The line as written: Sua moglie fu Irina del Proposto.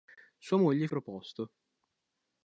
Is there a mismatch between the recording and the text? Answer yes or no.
yes